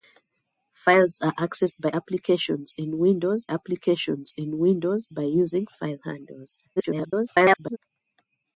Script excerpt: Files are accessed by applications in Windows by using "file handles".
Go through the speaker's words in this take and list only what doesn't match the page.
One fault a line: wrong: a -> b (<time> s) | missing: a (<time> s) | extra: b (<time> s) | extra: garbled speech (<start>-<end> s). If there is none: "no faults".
extra: applications in Windows (3.5 s)
extra: garbled speech (6.8-7.8 s)